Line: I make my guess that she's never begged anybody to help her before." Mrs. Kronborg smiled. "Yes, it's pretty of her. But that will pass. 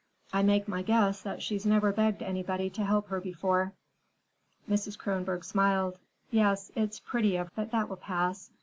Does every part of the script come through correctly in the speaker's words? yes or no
no